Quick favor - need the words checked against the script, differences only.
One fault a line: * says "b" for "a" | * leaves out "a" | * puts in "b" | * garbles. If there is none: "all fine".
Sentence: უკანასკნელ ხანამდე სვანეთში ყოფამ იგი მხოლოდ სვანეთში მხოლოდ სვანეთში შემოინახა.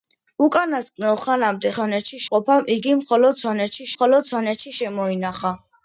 all fine